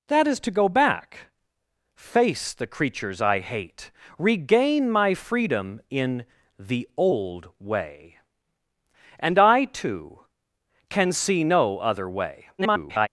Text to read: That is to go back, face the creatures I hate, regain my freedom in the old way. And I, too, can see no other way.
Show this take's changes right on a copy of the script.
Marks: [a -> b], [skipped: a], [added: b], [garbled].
That is to go back, face the creatures I hate, regain my freedom in the old way. And I, too, can see no other way. [garbled]